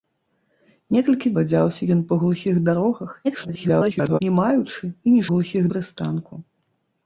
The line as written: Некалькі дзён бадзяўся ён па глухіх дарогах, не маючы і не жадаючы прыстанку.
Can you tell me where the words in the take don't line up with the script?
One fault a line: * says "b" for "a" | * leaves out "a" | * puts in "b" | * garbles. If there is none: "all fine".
* leaves out "дзён"
* garbles
* says "глухіх" for "жадаючы"